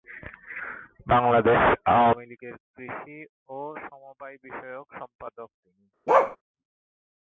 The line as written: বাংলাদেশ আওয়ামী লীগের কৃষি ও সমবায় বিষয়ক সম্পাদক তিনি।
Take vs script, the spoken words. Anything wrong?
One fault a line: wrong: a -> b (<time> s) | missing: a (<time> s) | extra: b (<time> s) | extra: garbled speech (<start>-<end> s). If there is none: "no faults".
no faults